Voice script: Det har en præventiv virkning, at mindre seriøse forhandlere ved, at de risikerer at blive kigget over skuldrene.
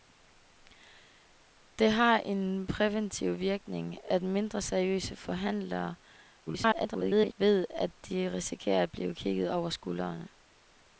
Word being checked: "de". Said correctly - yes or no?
yes